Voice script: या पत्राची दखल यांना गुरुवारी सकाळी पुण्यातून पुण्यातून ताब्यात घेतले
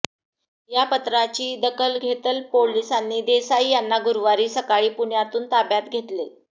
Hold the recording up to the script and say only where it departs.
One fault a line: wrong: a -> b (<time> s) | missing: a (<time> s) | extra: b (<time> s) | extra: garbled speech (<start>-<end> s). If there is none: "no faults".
extra: घेतल पोलिसांनी देसाई (2.0 s)
missing: पुण्यातून (5.5 s)